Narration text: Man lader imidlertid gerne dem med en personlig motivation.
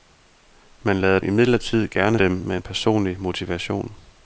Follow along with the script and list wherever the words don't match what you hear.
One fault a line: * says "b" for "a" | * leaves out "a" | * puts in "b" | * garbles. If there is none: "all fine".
all fine